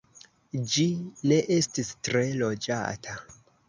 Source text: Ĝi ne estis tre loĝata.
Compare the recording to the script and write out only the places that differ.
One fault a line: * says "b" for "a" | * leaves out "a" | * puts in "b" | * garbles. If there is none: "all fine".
all fine